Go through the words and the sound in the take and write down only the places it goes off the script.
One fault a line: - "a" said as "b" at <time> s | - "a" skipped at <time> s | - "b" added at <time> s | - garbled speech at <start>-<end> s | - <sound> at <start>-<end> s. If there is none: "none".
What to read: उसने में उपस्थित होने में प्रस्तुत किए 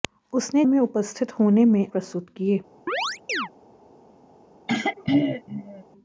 - chirp at 2.9-3.5 s
- throat clearing at 4.7-5.8 s